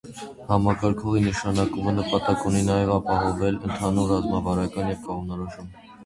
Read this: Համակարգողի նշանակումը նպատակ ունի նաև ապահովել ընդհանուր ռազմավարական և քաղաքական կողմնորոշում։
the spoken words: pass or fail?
fail